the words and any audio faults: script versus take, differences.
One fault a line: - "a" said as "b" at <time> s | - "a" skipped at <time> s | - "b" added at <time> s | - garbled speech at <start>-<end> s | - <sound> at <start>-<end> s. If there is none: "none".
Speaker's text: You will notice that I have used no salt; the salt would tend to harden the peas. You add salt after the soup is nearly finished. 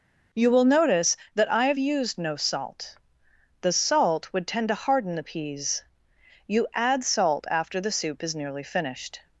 none